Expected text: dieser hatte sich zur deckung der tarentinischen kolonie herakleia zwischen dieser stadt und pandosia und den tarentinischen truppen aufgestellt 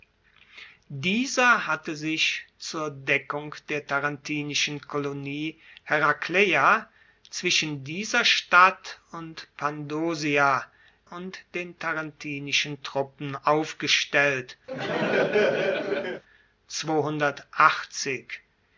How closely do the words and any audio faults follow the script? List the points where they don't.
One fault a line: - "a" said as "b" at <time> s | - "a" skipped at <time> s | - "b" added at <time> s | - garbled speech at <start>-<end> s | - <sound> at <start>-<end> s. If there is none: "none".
- laugh at 14.7-16.2 s